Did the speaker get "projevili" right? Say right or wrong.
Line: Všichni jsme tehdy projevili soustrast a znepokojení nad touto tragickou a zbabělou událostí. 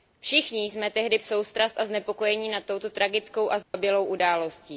wrong